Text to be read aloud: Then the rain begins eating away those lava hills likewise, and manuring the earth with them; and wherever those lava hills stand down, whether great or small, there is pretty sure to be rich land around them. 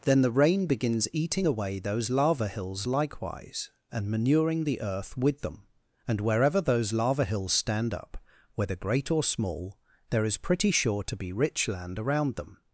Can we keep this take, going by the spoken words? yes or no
no